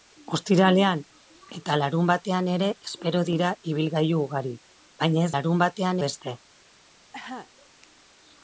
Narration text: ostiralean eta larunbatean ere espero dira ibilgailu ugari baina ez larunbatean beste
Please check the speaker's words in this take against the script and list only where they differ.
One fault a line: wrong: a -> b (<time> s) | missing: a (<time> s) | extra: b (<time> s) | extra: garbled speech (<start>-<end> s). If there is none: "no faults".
no faults